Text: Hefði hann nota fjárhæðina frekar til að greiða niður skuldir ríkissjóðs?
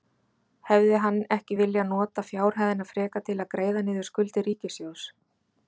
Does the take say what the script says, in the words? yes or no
no